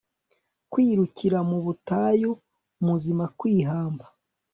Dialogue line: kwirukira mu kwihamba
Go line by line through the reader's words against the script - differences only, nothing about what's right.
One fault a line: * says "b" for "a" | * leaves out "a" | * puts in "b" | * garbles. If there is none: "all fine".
* puts in "butayu muzima"